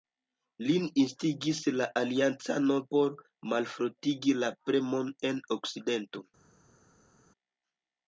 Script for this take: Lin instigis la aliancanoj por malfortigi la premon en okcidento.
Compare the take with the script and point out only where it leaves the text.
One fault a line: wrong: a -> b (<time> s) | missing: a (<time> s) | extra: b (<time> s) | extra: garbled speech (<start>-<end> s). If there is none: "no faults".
no faults